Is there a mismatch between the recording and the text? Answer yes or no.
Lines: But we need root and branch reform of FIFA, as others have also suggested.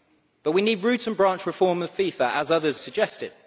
yes